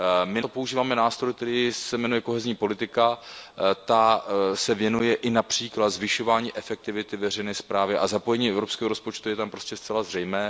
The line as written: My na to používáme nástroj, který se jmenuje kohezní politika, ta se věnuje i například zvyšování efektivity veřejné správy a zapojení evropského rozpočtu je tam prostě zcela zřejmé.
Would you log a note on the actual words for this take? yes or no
yes